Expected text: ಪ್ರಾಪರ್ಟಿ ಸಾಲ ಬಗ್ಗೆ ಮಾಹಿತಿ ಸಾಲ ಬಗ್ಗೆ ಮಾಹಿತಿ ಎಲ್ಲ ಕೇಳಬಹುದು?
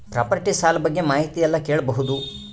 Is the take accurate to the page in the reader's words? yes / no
no